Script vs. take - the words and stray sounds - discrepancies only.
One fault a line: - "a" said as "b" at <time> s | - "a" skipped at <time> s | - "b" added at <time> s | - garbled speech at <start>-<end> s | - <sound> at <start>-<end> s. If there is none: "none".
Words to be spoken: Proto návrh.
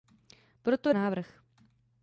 none